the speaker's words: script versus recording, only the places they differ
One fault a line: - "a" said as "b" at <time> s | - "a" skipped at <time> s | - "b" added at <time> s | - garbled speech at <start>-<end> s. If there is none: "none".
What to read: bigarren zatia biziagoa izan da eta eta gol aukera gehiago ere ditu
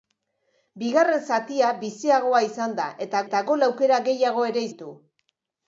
none